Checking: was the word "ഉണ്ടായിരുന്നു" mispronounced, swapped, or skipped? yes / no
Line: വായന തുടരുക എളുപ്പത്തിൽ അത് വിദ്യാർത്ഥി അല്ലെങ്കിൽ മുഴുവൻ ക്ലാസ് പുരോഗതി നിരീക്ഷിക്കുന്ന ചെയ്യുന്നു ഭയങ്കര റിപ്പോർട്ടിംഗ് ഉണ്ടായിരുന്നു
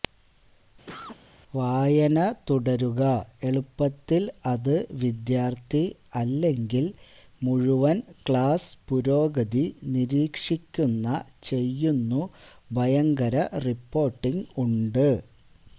yes